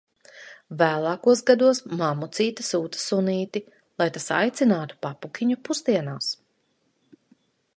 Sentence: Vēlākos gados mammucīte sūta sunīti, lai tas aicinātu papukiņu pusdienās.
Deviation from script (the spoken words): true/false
false